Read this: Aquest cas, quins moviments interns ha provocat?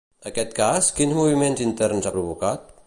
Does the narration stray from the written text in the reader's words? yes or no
no